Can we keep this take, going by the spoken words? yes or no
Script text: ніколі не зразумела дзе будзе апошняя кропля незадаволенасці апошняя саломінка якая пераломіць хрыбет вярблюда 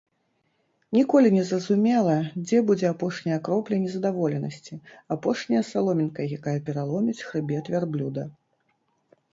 yes